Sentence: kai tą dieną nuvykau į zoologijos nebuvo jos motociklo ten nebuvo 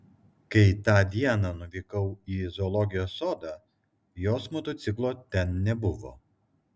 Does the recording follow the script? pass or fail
fail